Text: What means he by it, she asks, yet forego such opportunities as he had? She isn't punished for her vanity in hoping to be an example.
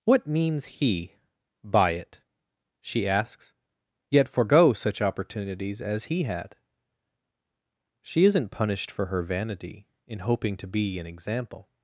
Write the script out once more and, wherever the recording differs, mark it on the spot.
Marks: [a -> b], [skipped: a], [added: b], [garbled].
What means he by it, she asks, yet forego such opportunities as he had? She isn't punished for her vanity in hoping to be an example.